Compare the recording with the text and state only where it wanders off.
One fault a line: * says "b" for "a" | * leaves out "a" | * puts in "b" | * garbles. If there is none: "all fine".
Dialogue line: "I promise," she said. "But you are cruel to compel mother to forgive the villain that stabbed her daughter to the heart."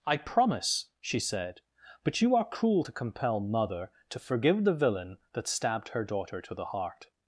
all fine